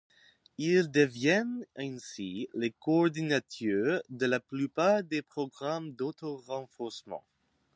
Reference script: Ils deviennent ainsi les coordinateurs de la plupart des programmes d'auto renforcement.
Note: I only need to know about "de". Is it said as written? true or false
true